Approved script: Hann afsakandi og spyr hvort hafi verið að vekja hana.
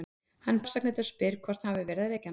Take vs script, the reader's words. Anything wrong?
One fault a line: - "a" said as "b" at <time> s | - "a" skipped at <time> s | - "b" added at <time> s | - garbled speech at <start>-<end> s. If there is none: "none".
none